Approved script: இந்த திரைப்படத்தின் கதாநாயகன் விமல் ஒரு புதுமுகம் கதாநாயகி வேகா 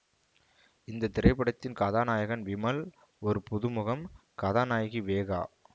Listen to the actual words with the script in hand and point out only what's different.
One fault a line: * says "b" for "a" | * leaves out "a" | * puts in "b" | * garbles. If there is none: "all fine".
all fine